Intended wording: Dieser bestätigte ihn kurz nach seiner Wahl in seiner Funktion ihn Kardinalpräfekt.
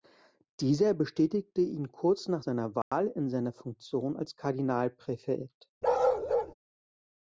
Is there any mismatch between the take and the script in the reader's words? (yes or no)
yes